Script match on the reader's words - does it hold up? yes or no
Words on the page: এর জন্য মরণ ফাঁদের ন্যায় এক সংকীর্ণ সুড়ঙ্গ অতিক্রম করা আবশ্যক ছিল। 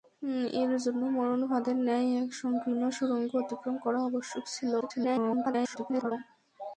no